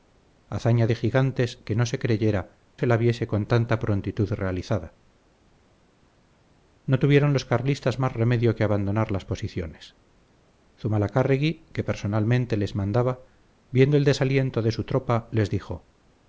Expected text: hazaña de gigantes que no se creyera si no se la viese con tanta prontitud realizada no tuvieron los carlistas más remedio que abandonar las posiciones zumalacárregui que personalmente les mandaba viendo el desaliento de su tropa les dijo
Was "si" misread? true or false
true